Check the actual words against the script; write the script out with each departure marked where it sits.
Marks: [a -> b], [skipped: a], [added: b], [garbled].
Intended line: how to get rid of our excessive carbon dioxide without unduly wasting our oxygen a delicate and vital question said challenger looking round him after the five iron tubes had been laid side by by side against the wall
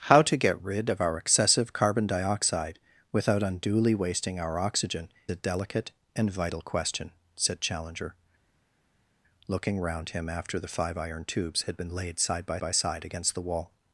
how to get rid of our excessive carbon dioxide without unduly wasting our oxygen a delicate and vital question said challenger looking round him after the five iron tubes had been laid side by by side against the wall